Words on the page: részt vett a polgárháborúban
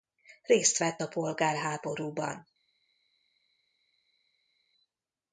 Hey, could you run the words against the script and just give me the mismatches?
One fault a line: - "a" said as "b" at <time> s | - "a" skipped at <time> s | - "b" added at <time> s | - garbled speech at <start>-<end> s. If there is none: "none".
none